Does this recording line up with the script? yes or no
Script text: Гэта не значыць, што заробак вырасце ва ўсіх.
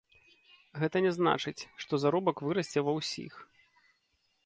yes